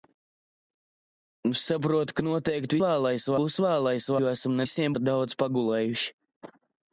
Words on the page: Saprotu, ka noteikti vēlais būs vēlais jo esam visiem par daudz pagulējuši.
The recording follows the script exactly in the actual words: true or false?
true